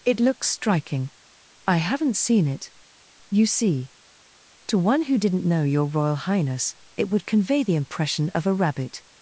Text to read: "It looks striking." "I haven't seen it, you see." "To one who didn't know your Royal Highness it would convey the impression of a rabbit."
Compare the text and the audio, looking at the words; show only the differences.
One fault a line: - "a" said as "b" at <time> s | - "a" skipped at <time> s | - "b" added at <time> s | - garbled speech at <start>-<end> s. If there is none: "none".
none